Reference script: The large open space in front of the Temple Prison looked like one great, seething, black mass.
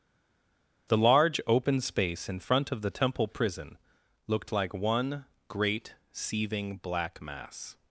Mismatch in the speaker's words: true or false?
false